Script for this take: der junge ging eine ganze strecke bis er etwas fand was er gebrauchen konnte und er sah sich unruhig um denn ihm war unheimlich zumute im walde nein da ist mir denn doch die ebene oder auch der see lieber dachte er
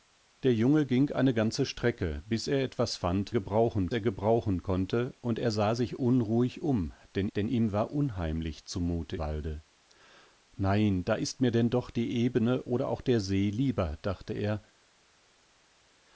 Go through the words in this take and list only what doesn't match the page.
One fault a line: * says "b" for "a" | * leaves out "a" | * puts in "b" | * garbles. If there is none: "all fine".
* says "gebrauchen" for "was"
* puts in "denn"
* leaves out "im"